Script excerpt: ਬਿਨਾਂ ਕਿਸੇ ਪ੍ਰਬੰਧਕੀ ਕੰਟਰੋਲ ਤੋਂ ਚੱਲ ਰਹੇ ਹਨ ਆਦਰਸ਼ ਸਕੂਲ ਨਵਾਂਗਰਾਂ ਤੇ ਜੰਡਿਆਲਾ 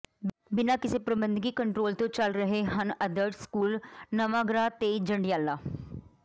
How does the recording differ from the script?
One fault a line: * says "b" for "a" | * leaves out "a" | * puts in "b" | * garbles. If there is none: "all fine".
all fine